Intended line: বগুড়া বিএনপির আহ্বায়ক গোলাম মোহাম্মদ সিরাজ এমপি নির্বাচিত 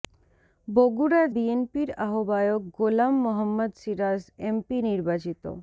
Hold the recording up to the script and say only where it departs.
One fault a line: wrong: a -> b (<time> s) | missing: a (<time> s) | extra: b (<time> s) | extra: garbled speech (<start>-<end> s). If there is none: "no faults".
no faults